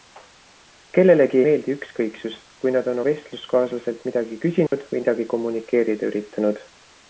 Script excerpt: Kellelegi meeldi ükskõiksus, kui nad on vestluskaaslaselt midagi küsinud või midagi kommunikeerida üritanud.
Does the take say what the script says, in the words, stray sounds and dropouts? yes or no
no